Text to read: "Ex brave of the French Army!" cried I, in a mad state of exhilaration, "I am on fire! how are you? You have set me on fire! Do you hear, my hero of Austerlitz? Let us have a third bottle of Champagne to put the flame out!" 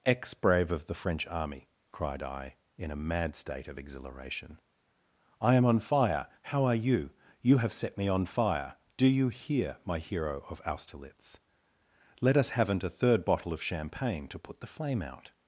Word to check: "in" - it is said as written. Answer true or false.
true